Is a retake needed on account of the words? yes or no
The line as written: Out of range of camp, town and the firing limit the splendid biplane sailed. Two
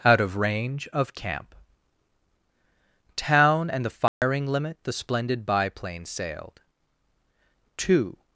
no